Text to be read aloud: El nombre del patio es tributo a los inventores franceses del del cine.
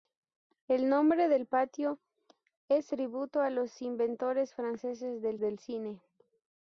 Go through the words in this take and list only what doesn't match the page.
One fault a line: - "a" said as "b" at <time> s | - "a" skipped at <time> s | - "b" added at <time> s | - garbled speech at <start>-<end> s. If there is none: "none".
none